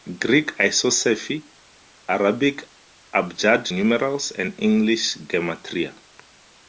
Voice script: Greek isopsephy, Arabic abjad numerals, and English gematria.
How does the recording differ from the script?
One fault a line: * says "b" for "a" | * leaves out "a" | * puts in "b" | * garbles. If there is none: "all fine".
all fine